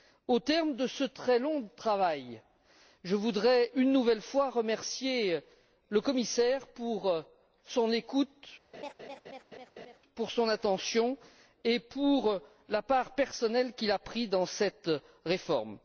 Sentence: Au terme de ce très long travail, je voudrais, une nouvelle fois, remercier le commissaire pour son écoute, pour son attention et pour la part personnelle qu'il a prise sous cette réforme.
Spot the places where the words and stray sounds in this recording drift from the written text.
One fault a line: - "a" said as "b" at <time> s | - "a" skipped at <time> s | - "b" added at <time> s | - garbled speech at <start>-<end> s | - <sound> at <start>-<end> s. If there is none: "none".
- laugh at 8.7-10.0 s
- "sous" said as "dans" at 14.3 s